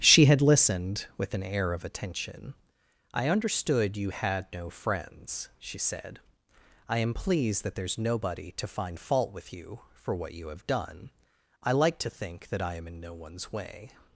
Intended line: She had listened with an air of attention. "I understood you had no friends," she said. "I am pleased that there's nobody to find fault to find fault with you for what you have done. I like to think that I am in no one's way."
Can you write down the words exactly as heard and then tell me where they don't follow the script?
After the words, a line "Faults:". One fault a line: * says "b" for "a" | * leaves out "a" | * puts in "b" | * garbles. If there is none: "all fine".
She had listened with an air of attention. "I understood you had no friends," she said. "I am pleased that there's nobody to find fault with you for what you have done. I like to think that I am in no one's way."
Faults:
* leaves out "to find fault"